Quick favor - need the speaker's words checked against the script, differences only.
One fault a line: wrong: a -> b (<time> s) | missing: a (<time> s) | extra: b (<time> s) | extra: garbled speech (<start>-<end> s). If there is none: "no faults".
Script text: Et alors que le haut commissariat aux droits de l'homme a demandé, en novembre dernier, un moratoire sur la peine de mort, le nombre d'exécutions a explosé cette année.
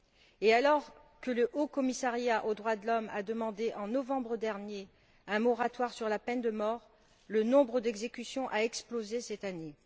no faults